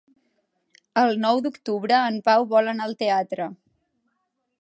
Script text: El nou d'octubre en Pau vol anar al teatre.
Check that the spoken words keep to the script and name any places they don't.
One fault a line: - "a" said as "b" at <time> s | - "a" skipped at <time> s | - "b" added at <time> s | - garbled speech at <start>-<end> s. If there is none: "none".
none